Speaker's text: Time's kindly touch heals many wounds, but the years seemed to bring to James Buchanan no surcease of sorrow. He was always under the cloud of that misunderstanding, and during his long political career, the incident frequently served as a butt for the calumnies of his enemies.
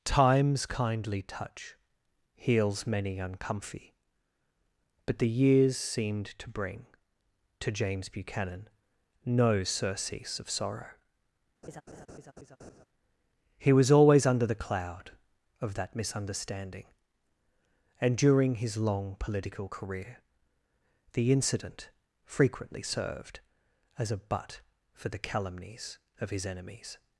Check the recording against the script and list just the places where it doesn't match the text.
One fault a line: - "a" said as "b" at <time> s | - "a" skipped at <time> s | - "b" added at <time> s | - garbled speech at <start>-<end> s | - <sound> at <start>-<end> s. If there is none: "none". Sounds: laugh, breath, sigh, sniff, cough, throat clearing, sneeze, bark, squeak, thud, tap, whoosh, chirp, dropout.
- "wounds" said as "uncomfy" at 3.2 s
- laugh at 11.6-12.9 s